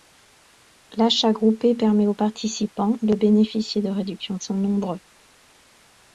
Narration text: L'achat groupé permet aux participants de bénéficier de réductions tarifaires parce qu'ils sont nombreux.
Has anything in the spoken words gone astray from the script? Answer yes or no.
yes